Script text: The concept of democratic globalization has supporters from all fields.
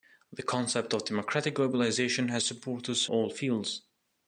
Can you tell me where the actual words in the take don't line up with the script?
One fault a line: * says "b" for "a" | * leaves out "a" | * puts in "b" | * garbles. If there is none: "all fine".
* leaves out "from"